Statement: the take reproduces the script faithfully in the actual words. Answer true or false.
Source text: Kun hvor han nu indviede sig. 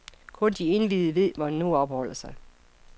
false